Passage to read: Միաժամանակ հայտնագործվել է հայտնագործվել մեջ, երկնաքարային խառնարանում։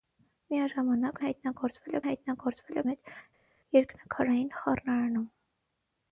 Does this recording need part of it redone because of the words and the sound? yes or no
no